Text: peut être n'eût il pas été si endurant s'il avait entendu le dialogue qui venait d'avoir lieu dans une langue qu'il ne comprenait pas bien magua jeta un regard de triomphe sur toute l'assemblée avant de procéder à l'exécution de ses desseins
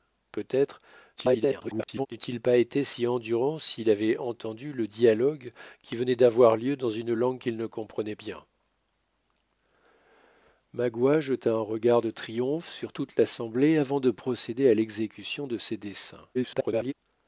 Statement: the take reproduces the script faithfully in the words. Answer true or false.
false